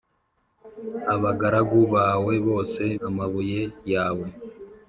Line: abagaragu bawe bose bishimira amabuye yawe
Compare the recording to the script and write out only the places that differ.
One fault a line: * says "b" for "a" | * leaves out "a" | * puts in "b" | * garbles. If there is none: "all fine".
* leaves out "bishimira"